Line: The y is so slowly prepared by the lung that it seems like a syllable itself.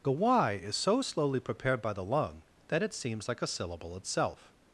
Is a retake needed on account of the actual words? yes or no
no